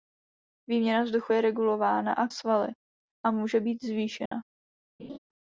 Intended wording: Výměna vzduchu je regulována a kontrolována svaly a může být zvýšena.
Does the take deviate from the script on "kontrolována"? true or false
true